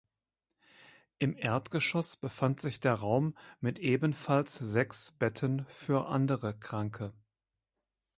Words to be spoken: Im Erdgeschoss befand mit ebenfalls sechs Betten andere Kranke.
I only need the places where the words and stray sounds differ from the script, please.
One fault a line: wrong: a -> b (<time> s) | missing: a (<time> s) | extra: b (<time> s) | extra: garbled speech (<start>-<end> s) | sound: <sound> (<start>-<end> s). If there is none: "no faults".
extra: sich der Raum (2.6 s)
extra: für (5.7 s)